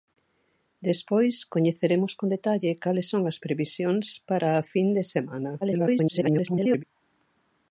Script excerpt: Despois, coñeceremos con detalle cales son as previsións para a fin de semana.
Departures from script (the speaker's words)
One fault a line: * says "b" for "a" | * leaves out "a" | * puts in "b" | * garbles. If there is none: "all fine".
* garbles